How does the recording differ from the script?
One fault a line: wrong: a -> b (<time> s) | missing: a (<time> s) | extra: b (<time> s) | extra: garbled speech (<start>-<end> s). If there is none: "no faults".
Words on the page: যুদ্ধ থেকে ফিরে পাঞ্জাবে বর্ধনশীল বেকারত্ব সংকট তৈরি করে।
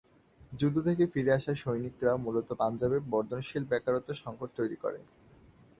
extra: আসা সৈনিকরা মূলত (1.3 s)